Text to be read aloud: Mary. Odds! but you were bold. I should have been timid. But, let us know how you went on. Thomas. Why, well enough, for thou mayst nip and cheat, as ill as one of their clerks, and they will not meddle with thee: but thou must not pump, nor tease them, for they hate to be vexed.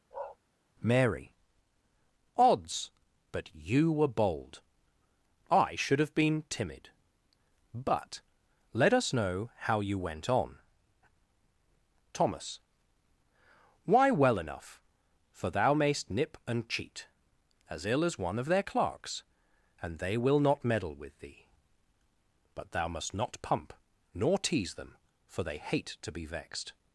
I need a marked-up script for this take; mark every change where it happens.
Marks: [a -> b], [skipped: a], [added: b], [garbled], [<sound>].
[bark] Mary. Odds! but you were bold. I should have been timid. But, let us know how you went on. Thomas. Why, well enough, for thou mayst nip and cheat, as ill as one of their clerks, and they will not meddle with thee: but thou must not pump, nor tease them, for they hate to be vexed.